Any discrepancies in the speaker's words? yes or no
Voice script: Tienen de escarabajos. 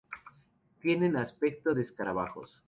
yes